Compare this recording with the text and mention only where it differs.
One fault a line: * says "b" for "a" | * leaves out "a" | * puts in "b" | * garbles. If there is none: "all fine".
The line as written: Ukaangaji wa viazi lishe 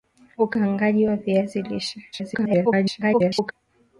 * garbles